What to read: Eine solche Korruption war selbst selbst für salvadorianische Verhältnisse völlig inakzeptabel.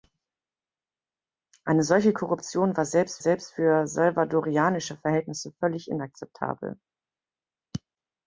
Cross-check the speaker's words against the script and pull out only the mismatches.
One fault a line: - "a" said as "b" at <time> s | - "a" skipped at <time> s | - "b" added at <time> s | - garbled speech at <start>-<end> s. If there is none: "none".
none